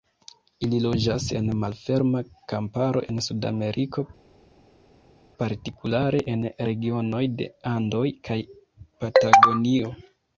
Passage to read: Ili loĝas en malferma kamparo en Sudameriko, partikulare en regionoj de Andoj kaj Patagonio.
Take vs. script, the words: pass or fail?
pass